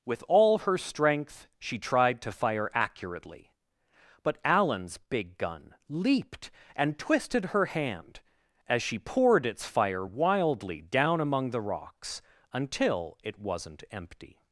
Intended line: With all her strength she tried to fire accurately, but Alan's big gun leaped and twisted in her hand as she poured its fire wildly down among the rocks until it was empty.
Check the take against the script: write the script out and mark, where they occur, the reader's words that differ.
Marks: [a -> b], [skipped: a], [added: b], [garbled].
With all her strength she tried to fire accurately, but Alan's big gun leaped and twisted [skipped: in] her hand as she poured its fire wildly down among the rocks until it [was -> wasn't] empty.